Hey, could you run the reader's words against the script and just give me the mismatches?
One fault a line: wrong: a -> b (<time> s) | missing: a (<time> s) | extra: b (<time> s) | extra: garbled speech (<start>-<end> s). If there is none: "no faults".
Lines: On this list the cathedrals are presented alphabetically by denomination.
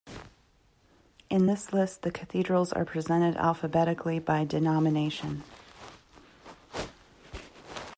wrong: On -> In (1.3 s)